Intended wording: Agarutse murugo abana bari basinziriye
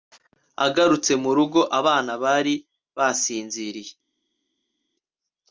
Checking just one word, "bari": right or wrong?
right